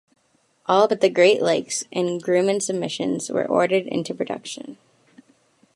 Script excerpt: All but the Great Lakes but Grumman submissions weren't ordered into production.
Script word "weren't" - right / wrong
wrong